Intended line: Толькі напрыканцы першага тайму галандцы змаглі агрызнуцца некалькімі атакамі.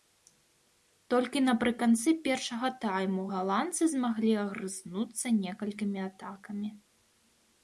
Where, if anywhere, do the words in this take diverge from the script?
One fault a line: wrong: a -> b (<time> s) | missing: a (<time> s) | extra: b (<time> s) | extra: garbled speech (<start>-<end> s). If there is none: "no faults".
no faults